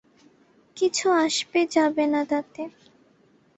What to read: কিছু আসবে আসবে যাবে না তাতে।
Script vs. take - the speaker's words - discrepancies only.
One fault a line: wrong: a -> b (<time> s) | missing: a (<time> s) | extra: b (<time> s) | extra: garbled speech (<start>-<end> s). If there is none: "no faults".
missing: আসবে (1.6 s)